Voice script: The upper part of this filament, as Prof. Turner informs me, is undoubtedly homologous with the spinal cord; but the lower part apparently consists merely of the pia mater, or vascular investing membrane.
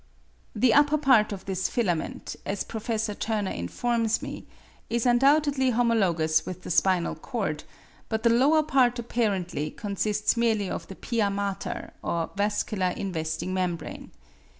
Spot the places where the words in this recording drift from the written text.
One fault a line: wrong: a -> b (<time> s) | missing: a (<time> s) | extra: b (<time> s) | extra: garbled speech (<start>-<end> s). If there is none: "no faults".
no faults